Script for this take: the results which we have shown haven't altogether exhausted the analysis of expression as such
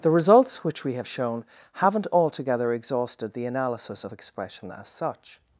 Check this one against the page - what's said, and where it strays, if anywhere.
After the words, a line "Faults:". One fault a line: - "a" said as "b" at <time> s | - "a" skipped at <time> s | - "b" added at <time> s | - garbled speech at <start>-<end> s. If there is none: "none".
the results which we have shown haven't altogether exhausted the analysis of expression as such
Faults:
none